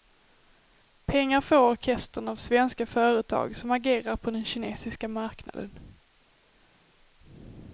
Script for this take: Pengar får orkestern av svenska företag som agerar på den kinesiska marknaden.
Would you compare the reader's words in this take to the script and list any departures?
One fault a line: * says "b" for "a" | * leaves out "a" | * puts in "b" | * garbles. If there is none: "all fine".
all fine